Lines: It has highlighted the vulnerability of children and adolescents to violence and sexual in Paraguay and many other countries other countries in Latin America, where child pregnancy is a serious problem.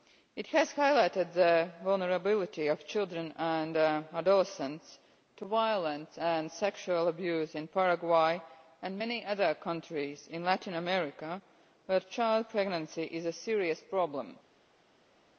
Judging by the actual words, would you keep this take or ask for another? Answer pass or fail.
fail